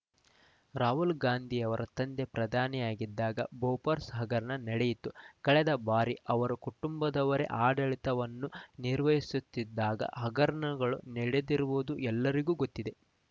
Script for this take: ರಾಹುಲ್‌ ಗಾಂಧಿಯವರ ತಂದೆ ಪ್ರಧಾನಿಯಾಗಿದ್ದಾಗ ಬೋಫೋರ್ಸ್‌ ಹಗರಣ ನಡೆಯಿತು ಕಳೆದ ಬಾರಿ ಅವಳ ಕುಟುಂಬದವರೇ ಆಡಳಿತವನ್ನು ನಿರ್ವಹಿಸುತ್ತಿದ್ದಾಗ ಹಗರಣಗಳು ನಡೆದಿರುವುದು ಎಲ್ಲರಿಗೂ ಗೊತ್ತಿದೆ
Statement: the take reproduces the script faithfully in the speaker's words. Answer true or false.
false